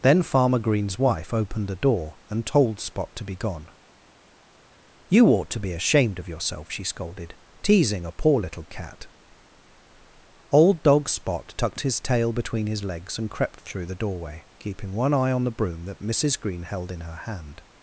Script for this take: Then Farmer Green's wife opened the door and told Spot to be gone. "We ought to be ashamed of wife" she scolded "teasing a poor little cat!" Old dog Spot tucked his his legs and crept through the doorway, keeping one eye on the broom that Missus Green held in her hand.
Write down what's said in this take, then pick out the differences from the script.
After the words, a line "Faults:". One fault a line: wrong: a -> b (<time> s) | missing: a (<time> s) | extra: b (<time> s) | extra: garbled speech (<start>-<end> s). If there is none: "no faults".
Then Farmer Green's wife opened the door and told Spot to be gone. "You ought to be ashamed of yourself" she scolded "teasing a poor little cat!" Old dog Spot tucked his tail between his legs and crept through the doorway, keeping one eye on the broom that Missus Green held in her hand.
Faults:
wrong: We -> You (5.1 s)
wrong: wife -> yourself (6.3 s)
extra: tail between (12.0 s)